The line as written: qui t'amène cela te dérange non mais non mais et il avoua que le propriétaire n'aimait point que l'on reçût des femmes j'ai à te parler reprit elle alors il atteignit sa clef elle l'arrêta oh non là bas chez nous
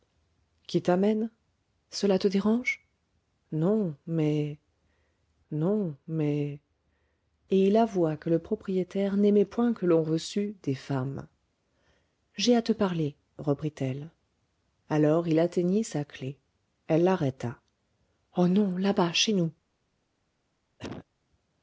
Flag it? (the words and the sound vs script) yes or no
yes